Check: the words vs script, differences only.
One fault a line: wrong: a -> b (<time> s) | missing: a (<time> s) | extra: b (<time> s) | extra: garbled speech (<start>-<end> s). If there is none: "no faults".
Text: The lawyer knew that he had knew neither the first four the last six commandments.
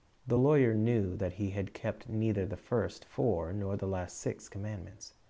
wrong: knew -> kept (1.7 s)
extra: nor (3.5 s)